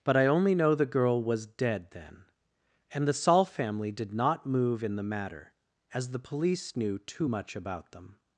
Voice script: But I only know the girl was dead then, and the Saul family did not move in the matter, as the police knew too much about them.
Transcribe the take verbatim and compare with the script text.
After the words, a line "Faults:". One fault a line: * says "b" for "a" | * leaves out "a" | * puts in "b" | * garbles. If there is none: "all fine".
But I only know the girl was dead then, and the Saul family did not move in the matter, as the police knew too much about them.
Faults:
all fine